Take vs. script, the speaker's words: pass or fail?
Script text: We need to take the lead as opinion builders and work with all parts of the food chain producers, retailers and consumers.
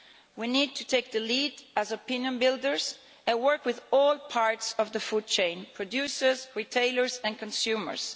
pass